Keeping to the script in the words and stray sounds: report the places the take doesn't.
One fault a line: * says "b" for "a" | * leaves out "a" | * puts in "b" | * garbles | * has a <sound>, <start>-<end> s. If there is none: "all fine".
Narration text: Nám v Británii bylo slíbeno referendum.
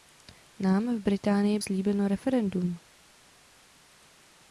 * leaves out "bylo"